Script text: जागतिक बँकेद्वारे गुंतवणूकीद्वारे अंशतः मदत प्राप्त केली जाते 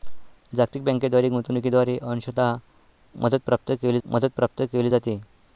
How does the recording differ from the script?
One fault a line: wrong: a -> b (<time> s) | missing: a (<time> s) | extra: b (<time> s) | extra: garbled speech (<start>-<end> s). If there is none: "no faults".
extra: मदत प्राप्त केली (4.1 s)